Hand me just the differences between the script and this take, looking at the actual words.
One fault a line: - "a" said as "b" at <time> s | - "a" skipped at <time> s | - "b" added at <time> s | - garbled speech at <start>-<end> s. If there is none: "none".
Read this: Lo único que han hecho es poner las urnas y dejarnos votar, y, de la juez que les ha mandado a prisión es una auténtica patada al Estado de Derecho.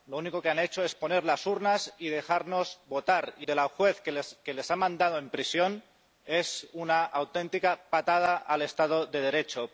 none